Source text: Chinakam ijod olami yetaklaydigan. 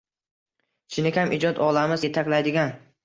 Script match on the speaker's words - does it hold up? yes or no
yes